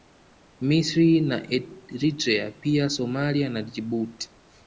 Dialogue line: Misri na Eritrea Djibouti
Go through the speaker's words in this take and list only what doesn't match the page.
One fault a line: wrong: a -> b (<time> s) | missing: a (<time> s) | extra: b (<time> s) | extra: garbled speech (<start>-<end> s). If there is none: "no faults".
extra: pia Somalia na (2.5 s)